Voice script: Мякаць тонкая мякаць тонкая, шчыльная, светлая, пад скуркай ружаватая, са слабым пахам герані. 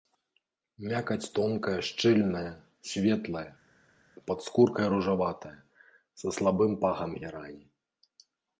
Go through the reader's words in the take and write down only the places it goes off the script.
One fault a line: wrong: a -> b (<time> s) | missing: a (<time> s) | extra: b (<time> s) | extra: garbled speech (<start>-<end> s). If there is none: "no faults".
missing: мякаць тонкая (1.8 s)